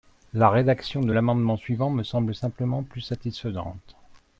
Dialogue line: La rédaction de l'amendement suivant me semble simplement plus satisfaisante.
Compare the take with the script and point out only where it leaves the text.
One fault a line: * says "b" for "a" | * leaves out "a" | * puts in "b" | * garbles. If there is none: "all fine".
all fine